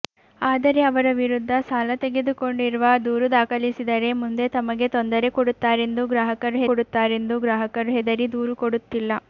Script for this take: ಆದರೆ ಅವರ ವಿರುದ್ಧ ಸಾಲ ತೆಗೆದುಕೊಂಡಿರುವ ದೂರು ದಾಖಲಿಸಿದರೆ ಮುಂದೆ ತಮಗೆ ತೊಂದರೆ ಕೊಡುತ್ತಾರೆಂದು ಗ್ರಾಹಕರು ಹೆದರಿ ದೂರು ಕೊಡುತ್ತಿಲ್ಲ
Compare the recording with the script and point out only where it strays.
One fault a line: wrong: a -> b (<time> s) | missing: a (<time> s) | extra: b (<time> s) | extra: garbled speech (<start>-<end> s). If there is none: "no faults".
extra: ಕೊಡುತ್ತಾರೆಂದು ಗ್ರಾಹಕರು (6.7 s)